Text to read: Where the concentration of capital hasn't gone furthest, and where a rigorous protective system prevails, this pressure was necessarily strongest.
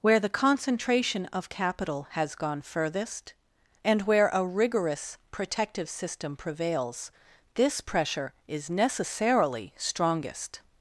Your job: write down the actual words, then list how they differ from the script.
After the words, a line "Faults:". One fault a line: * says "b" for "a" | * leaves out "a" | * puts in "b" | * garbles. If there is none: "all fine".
Where the concentration of capital has gone furthest, and where a rigorous protective system prevails, this pressure is necessarily strongest.
Faults:
* says "has" for "hasn't"
* says "is" for "was"